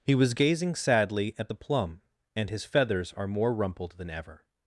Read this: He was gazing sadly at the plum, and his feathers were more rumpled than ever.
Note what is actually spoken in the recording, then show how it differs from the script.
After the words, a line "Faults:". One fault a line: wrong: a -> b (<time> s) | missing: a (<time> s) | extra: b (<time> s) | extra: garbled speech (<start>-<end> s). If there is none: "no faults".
He was gazing sadly at the plum, and his feathers are more rumpled than ever.
Faults:
wrong: were -> are (3.1 s)